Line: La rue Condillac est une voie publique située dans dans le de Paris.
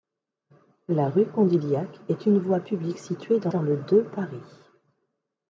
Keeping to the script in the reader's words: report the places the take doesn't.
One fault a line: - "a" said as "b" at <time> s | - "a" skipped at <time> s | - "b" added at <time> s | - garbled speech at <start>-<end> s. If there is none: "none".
none